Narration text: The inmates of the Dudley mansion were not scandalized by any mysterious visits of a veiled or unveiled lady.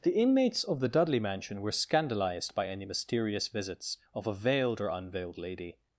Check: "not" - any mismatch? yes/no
yes